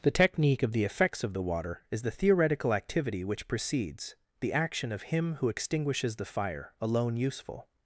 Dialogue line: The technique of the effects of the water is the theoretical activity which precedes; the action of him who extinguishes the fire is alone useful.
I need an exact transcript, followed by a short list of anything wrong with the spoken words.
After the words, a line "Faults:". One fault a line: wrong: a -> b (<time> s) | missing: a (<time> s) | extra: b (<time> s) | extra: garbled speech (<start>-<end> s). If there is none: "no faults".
The technique of the effects of the water is the theoretical activity which precedes; the action of him who extinguishes the fire alone useful.
Faults:
missing: is (6.7 s)